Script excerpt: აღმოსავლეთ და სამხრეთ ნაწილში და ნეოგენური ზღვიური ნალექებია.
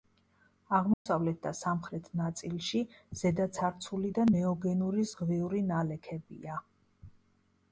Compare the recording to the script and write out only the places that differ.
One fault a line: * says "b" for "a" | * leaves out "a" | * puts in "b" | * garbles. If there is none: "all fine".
* puts in "ზედაცარცული"